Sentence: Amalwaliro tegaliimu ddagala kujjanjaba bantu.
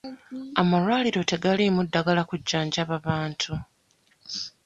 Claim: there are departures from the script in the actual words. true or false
false